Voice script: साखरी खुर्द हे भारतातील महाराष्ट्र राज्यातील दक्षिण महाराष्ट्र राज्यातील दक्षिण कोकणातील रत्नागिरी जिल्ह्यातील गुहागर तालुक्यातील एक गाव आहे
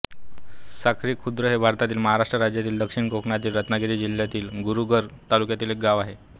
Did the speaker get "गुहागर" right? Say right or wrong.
right